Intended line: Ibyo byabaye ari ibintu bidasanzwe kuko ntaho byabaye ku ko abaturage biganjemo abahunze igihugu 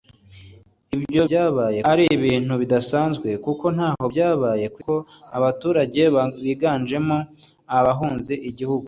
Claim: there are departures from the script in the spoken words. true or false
false